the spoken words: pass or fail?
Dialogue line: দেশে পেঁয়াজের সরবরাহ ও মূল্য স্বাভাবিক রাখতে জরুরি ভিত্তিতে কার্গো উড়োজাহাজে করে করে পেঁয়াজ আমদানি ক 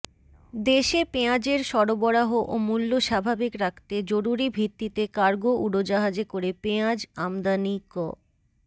fail